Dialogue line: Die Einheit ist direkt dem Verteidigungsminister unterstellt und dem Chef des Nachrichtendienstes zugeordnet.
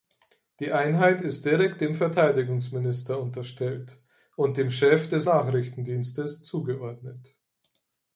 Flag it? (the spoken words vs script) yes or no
no